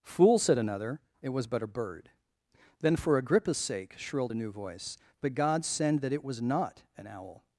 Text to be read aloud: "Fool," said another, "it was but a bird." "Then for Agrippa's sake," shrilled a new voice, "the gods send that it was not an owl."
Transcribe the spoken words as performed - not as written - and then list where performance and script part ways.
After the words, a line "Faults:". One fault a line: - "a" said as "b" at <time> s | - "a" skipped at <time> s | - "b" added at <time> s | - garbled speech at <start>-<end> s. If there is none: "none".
"Fool," said another, "it was but a bird." "Then for Agrippa's sake," shrilled a new voice, "but god send that it was not an owl."
Faults:
- "the gods" said as "but god" at 5.2 s